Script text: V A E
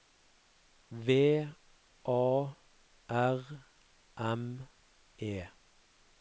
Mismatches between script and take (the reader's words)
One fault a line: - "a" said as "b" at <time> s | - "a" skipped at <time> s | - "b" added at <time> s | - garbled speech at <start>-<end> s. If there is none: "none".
- "R M" added at 3.1 s